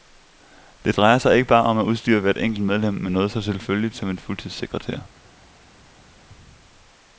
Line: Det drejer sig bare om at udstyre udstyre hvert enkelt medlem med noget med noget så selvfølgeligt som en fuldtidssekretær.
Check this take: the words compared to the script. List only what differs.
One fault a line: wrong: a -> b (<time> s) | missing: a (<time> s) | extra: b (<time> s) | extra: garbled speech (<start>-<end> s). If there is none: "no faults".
extra: ikke (1.4 s)
missing: udstyre (2.2 s)
missing: med noget (3.3 s)